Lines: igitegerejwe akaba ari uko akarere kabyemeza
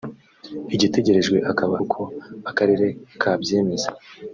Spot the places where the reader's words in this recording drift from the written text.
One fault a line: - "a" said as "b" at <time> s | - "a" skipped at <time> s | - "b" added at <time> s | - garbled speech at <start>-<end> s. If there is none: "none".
- "ari" skipped at 1.8 s